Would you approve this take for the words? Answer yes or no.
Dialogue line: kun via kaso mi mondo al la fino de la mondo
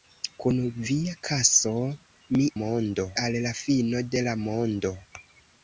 yes